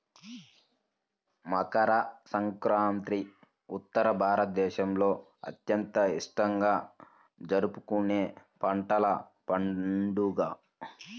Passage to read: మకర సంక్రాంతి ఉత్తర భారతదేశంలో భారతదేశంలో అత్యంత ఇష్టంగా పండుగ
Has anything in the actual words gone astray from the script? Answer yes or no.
yes